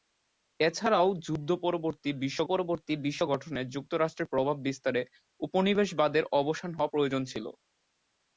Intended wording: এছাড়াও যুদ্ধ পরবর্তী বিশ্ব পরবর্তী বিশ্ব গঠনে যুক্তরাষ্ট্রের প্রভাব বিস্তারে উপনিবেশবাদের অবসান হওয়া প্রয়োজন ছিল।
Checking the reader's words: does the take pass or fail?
pass